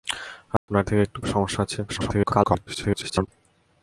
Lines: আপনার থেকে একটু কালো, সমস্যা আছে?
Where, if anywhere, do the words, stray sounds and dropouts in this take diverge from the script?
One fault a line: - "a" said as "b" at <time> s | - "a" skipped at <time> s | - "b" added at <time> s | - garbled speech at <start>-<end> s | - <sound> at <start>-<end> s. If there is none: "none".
- dropout at 0.6-0.7 s
- "কালো" skipped at 1.2 s
- garbled speech at 1.9-3.3 s